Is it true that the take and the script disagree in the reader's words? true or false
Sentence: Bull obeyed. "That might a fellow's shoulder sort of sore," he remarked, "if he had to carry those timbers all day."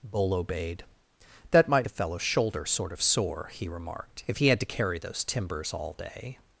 false